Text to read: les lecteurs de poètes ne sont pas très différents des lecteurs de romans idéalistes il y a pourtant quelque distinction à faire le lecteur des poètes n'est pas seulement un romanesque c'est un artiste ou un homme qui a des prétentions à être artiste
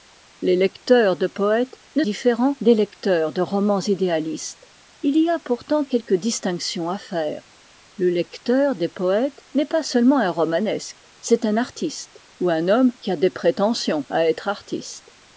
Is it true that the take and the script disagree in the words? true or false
true